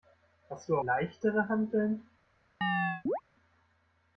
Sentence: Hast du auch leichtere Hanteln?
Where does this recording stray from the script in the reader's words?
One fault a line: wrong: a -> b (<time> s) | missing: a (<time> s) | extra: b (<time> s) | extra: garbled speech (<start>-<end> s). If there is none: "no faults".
missing: auch (0.8 s)